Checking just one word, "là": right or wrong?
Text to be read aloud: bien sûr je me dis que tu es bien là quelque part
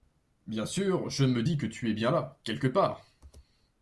right